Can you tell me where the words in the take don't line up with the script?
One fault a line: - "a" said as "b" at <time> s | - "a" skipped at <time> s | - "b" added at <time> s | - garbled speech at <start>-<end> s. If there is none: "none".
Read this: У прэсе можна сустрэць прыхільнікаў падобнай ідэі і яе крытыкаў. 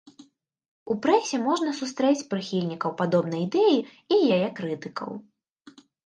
none